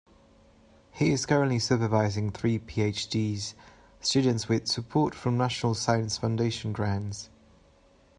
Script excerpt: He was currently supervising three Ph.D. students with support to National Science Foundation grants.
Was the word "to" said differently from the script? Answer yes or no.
yes